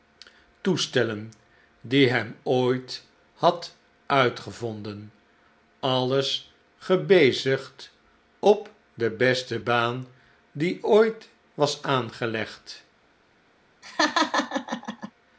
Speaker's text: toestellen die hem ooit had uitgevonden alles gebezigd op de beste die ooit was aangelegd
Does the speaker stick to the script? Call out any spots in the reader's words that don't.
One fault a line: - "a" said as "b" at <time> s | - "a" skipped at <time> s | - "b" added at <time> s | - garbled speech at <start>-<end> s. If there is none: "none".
- "baan" added at 9.6 s